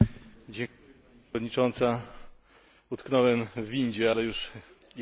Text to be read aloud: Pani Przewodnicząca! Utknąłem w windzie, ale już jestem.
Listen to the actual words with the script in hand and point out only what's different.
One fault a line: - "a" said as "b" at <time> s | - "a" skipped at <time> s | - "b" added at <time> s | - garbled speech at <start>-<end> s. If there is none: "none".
none